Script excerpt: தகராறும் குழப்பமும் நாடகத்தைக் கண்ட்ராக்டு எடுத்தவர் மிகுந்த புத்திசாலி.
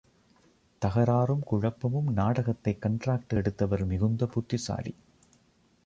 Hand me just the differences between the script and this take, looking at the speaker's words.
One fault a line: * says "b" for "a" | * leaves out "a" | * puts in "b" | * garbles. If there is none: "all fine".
all fine